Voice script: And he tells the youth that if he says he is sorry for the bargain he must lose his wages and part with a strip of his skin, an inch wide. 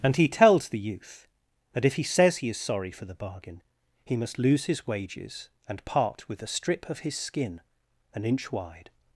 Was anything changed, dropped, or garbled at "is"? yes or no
no